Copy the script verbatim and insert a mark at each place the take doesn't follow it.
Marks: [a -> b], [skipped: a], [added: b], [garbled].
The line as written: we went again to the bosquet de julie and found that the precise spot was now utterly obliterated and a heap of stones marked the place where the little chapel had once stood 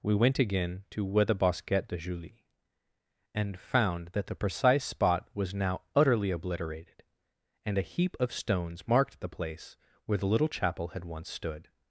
we went again to [added: where] the bosquet de julie and found that the precise spot was now utterly obliterated and a heap of stones marked the place where the little chapel had once stood